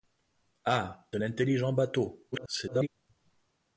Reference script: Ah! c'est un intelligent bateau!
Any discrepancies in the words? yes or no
yes